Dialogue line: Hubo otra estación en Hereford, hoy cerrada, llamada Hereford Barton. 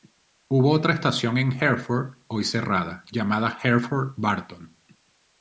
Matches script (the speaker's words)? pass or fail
pass